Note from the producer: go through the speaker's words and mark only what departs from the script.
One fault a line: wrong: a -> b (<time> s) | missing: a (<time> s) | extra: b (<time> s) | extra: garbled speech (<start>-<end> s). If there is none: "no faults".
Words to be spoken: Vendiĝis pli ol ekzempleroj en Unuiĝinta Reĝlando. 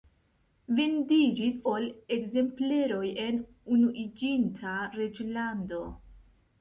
missing: pli (1.6 s)